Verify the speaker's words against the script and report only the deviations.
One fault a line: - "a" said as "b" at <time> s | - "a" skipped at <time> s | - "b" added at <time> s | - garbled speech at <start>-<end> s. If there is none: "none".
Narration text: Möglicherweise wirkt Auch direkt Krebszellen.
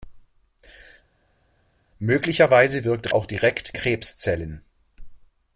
none